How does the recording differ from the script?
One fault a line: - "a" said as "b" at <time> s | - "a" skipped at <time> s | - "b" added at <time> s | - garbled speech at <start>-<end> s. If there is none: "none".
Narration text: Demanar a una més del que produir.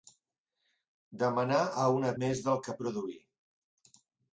none